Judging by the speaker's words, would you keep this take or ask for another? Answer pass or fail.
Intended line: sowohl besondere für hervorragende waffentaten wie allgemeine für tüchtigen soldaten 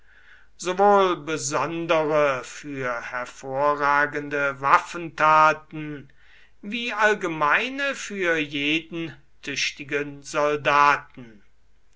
fail